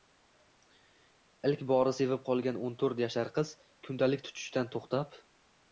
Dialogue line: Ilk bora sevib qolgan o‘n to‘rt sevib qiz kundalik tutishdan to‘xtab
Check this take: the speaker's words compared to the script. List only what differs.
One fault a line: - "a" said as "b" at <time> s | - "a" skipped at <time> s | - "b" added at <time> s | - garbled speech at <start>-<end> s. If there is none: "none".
- "sevib" said as "yashar" at 3.1 s